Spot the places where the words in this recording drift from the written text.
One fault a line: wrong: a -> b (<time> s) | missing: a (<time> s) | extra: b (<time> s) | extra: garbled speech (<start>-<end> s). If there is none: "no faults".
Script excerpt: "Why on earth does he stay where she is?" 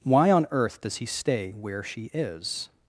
no faults